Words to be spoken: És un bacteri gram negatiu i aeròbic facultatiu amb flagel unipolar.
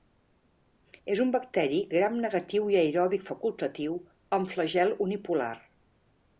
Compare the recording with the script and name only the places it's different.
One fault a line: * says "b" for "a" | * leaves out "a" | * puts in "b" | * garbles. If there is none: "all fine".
all fine